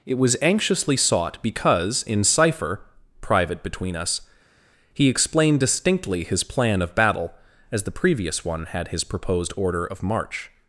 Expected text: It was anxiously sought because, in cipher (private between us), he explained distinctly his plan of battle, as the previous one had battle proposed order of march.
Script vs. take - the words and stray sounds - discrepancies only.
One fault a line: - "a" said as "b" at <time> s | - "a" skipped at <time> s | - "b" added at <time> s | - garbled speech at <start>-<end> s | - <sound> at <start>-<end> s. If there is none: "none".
- "battle" said as "his" at 8.9 s